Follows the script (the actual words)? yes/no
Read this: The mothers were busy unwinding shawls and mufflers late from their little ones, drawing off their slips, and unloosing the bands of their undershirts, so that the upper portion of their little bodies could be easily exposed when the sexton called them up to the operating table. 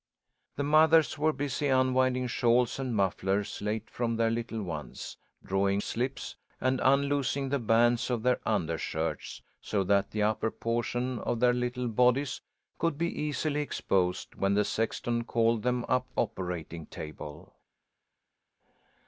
no